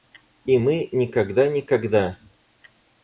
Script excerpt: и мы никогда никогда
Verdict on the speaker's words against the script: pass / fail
pass